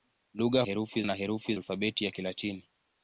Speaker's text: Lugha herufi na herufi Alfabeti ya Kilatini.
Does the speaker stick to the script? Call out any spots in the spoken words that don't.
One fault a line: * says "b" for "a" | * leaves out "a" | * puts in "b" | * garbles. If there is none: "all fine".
all fine